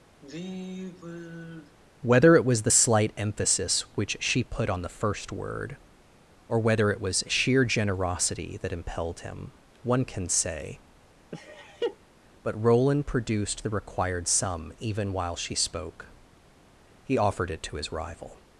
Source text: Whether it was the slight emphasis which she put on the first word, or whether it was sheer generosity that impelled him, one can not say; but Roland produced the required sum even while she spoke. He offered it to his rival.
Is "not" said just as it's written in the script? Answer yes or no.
no